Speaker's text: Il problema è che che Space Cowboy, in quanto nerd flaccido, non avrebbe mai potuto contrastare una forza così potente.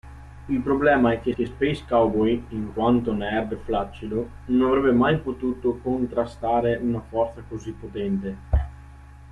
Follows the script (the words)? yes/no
yes